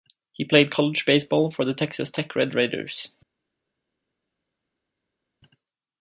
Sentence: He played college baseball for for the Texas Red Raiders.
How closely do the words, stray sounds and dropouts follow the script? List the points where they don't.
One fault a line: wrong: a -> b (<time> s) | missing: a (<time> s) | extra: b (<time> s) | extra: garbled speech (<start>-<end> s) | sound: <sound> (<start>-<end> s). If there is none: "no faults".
missing: for (1.7 s)
extra: Tech (2.1 s)